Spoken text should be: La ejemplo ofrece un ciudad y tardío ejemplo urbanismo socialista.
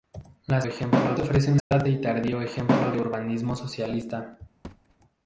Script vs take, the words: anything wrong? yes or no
no